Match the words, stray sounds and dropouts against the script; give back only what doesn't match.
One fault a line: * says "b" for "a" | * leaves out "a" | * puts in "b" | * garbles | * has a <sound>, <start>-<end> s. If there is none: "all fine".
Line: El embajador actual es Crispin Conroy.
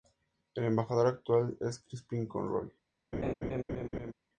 * has a laugh, 3.1-4.1 s